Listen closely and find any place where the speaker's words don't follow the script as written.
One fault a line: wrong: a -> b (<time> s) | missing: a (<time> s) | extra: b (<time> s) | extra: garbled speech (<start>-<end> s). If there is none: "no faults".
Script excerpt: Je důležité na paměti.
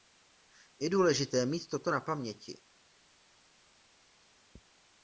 extra: mít toto (1.4 s)